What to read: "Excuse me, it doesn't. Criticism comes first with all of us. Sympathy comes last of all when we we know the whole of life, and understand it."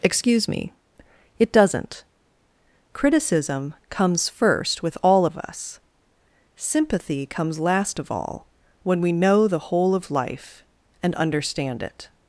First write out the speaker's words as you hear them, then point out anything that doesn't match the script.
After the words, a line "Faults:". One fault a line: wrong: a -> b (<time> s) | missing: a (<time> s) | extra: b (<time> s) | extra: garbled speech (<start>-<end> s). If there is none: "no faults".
"Excuse me, it doesn't. Criticism comes first with all of us. Sympathy comes last of all when we know the whole of life, and understand it."
Faults:
missing: we (9.1 s)